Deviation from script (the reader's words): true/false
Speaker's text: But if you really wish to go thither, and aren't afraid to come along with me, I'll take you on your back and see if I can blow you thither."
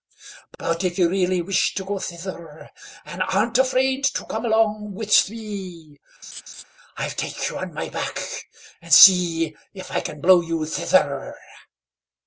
true